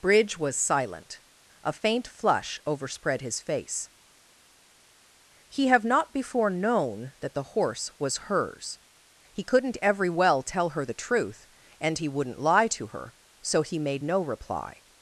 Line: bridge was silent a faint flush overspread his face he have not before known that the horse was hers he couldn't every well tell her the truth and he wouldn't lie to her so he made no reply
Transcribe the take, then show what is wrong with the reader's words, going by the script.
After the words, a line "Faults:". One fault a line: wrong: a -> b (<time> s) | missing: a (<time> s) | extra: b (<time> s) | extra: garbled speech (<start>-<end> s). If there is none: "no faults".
bridge was silent a faint flush overspread his face he have not before known that the horse was hers he couldn't every well tell her the truth and he wouldn't lie to her so he made no reply
Faults:
no faults